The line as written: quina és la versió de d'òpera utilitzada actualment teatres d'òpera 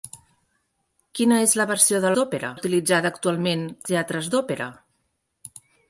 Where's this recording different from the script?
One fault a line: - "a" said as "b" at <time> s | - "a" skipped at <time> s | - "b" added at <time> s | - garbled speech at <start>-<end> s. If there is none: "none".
none